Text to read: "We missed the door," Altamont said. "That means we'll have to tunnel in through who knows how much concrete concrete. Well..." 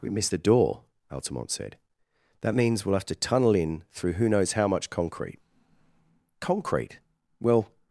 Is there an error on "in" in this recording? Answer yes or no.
no